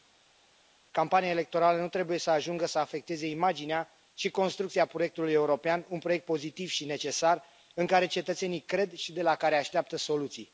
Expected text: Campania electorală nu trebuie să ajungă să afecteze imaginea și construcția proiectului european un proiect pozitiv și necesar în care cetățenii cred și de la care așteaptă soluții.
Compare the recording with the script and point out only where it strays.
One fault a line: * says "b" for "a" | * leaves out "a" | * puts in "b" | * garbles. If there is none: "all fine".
all fine